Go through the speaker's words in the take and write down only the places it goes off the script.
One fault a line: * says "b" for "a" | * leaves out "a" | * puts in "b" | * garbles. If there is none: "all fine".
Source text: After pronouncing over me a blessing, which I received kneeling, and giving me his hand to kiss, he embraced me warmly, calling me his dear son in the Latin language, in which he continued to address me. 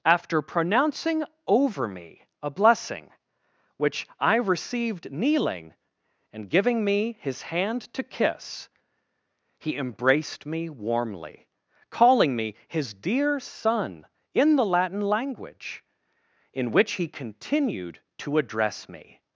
all fine